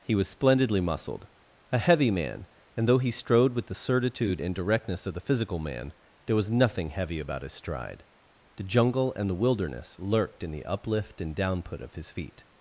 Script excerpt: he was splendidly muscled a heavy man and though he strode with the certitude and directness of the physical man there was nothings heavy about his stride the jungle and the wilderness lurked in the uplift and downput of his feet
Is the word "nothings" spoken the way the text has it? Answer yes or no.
no